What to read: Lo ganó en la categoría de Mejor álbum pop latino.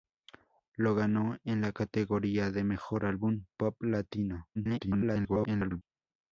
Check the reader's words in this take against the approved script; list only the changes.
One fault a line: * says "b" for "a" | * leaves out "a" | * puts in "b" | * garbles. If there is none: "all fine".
* garbles